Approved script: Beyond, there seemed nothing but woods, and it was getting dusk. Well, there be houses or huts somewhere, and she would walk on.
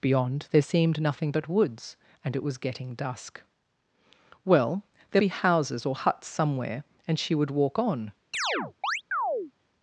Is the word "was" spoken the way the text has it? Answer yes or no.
yes